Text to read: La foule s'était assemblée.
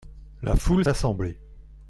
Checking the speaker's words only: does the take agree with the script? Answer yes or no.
no